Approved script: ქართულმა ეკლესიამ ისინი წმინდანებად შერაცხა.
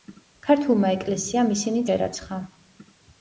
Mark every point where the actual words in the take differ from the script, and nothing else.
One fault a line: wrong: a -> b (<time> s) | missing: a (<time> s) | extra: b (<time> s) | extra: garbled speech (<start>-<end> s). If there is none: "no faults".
missing: წმინდანებად (1.8 s)